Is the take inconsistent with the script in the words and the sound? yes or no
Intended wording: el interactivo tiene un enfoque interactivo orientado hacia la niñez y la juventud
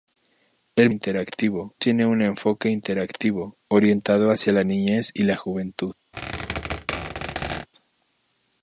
yes